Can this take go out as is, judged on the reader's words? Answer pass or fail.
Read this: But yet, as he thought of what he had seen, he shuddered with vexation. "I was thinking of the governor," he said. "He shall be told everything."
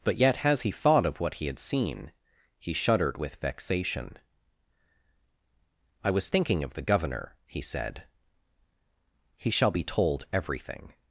pass